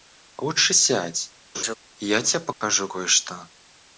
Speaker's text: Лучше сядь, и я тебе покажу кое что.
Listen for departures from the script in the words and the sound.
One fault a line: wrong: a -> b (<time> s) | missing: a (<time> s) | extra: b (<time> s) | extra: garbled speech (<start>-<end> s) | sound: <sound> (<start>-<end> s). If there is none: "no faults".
sound: laugh (1.5-1.8 s)
sound: dropout (2.5-2.6 s)